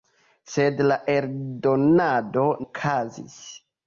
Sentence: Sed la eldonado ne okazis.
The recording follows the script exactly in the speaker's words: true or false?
false